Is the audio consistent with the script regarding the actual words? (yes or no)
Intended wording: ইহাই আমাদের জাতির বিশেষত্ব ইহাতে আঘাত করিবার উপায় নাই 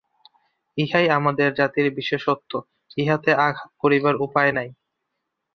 yes